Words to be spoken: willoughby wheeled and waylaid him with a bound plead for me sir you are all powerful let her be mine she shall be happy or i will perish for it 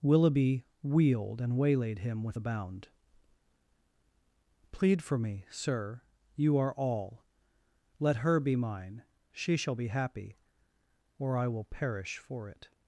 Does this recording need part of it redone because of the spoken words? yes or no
yes